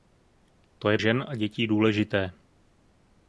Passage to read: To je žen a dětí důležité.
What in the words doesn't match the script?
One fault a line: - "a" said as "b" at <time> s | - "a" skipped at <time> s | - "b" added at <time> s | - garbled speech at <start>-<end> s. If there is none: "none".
none